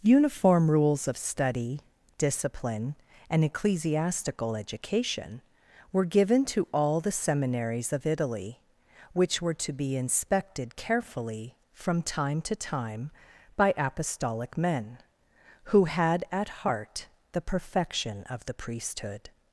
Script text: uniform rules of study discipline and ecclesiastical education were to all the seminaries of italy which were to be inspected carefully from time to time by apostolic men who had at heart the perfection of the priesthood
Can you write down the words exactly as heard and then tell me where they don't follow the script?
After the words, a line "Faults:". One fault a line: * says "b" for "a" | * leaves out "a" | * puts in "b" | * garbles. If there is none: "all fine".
uniform rules of study discipline and ecclesiastical education were given to all the seminaries of italy which were to be inspected carefully from time to time by apostolic men who had at heart the perfection of the priesthood
Faults:
* puts in "given"